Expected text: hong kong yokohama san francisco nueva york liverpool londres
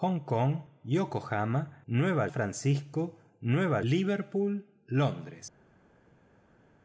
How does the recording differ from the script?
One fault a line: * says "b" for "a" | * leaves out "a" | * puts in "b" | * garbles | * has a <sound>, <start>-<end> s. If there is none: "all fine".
* says "nueva" for "san"
* leaves out "york"